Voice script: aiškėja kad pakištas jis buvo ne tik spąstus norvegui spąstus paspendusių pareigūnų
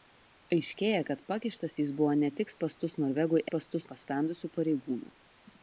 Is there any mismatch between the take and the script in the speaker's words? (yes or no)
no